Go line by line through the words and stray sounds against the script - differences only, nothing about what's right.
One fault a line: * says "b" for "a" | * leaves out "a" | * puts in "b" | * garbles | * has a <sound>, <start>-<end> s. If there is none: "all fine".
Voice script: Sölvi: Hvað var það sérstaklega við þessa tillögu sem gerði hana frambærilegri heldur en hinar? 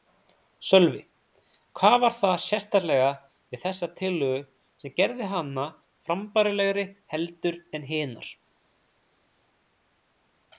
all fine